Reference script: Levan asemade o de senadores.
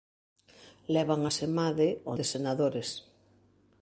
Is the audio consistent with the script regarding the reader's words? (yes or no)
yes